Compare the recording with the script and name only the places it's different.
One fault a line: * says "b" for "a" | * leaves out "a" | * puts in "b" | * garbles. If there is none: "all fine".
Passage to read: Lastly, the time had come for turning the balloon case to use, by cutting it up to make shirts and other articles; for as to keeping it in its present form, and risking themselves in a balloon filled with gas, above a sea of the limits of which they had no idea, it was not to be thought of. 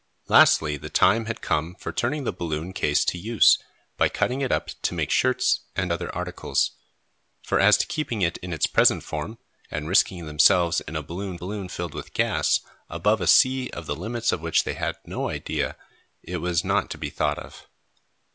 * puts in "balloon"